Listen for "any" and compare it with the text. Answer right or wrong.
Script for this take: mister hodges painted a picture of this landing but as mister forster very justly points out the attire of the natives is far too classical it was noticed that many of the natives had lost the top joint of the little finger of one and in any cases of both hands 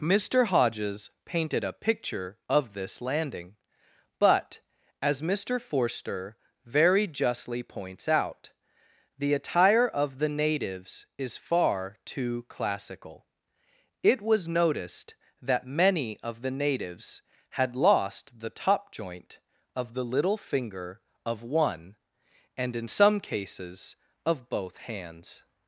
wrong